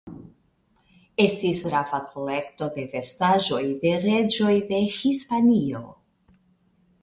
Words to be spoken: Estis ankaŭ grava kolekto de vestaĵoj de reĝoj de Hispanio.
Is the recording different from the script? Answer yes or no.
yes